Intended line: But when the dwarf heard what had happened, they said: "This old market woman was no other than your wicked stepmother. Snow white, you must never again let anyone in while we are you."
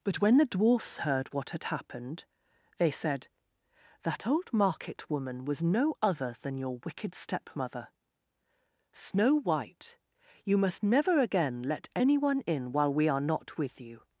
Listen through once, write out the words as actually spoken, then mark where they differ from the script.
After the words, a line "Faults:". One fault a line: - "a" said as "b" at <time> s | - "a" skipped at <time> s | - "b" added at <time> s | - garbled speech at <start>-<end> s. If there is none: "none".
But when the dwarfs heard what had happened, they said: "That old market woman was no other than your wicked stepmother. Snow white, you must never again let anyone in while we are not with you."
Faults:
- "dwarf" said as "dwarfs" at 0.5 s
- "This" said as "That" at 4.0 s
- "not with" added at 13.2 s